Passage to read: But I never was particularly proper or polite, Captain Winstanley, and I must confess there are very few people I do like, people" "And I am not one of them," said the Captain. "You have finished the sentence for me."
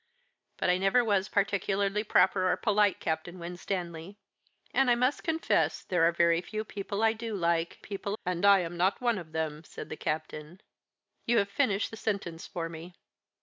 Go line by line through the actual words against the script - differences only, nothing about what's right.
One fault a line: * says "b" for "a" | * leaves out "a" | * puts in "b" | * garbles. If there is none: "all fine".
all fine